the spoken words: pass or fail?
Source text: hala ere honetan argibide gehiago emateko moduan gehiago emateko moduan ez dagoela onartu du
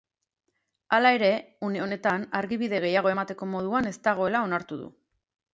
fail